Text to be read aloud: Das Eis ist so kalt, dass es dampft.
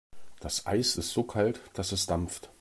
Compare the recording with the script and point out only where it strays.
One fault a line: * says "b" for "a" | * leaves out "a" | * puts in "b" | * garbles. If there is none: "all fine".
all fine